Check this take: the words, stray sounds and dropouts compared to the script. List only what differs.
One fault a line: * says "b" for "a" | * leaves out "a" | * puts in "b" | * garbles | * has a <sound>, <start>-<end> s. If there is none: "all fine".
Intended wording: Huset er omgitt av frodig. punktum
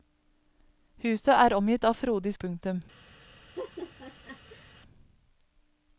* has a laugh, 3.6-4.7 s